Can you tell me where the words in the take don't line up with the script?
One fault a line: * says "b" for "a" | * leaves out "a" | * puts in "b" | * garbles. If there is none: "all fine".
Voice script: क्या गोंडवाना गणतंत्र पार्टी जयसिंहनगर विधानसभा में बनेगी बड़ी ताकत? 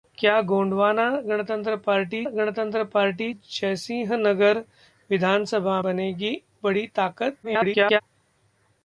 * puts in "गणतंत्र पार्टी"
* leaves out "में"
* garbles